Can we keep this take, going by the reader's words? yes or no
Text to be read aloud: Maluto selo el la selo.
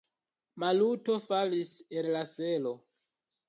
no